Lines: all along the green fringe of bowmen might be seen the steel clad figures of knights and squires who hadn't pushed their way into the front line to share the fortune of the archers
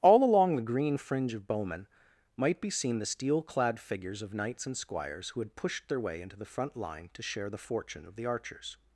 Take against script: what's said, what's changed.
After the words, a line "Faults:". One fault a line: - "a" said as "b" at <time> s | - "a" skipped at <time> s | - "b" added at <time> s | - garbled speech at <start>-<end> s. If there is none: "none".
all along the green fringe of bowmen might be seen the steel clad figures of knights and squires who had pushed their way into the front line to share the fortune of the archers
Faults:
- "hadn't" said as "had" at 5.4 s